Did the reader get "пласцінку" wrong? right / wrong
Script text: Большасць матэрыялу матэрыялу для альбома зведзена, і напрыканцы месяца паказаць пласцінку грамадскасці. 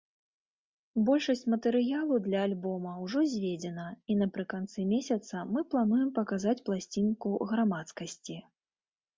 right